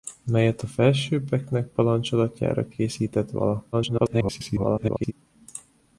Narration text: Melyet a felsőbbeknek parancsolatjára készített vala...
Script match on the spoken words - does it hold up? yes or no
no